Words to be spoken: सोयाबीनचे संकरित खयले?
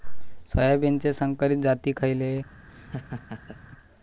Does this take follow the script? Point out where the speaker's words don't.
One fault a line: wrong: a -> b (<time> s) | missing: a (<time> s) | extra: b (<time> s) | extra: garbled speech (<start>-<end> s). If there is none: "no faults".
extra: जाती (1.6 s)